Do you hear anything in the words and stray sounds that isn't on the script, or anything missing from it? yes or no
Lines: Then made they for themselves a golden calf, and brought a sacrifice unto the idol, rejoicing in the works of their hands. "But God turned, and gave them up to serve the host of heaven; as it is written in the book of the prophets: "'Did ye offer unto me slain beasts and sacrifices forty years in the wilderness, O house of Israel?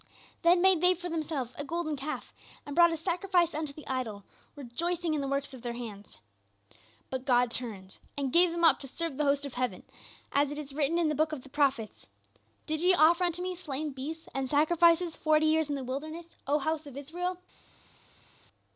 no